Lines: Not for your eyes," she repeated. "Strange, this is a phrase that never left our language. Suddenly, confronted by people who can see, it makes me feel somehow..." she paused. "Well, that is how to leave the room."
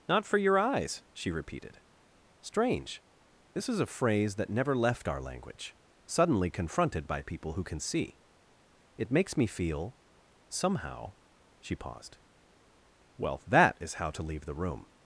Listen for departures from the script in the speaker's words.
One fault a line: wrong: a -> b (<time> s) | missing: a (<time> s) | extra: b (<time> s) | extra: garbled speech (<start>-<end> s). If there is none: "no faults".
no faults